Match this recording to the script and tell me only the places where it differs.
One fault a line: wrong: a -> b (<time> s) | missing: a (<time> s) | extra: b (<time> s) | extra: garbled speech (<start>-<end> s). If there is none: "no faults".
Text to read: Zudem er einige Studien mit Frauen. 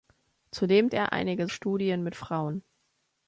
no faults